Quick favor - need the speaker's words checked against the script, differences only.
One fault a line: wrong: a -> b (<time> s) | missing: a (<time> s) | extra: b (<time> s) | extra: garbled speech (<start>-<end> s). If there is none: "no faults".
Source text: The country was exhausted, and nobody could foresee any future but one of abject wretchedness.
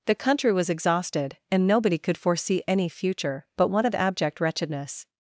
no faults